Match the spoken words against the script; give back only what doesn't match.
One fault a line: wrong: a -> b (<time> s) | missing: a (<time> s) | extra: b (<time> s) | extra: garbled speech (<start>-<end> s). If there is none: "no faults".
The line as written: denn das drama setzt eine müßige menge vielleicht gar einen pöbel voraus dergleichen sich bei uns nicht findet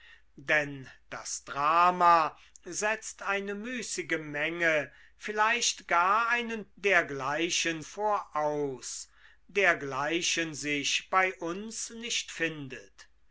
wrong: pöbel -> dergleichen (6.7 s)